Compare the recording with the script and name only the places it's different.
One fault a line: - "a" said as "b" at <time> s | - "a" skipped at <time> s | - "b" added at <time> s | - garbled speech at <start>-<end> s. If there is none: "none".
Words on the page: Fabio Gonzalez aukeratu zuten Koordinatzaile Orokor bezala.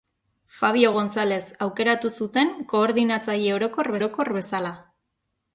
- "Orokor" added at 4.0 s